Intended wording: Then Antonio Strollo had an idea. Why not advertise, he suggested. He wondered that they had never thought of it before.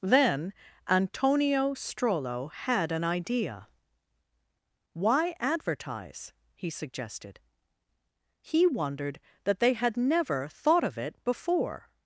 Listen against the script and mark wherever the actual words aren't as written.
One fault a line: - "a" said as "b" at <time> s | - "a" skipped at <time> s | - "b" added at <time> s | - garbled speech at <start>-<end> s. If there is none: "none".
- "not" skipped at 5.3 s